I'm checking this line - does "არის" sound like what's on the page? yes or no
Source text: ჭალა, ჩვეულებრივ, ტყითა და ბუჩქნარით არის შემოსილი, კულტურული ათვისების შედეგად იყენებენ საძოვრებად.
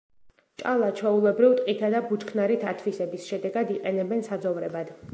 no